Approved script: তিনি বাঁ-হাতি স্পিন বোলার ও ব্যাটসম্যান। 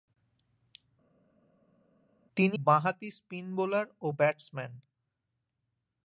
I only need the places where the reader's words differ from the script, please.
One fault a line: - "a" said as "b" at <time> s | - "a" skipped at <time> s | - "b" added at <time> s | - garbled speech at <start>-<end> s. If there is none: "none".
none